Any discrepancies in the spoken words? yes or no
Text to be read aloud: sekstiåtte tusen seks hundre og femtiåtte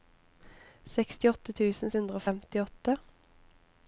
yes